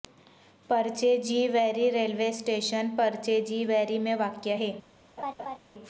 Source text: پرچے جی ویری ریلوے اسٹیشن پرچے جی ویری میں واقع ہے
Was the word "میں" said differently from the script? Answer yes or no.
no